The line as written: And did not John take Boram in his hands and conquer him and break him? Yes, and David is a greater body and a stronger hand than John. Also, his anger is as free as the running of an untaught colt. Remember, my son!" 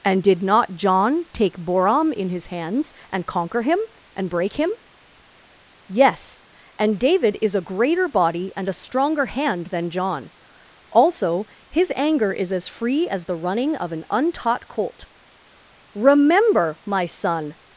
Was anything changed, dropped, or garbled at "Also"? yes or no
no